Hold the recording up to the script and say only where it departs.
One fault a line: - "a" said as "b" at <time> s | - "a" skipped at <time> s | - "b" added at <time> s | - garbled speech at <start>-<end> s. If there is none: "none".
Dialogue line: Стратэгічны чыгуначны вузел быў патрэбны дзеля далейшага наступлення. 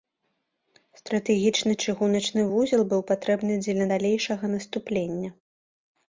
none